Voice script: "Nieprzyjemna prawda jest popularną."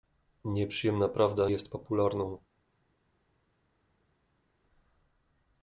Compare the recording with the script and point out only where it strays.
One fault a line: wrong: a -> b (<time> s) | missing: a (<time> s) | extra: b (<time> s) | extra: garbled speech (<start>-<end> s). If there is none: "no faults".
no faults